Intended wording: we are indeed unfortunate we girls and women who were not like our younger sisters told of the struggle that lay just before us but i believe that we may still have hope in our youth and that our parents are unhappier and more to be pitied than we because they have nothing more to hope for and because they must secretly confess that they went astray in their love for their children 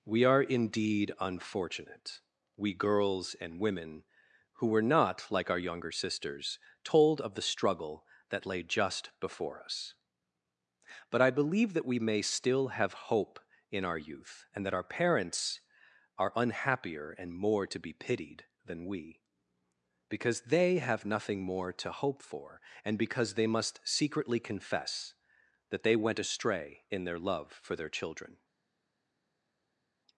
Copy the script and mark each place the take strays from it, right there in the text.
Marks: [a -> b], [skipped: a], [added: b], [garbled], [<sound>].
we are indeed unfortunate we girls and women who were not like our younger sisters told of the struggle that lay just before us but i believe that we may still have hope in our youth and that our parents are unhappier and more to be pitied than we because they have nothing more to hope for and because they must secretly confess that they went astray in their love for their children